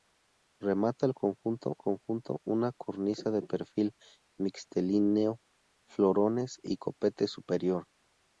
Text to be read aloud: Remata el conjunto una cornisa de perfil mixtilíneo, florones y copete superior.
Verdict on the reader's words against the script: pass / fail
fail